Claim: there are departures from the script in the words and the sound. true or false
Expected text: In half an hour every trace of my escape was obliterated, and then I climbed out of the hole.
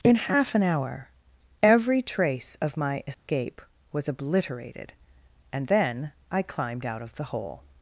true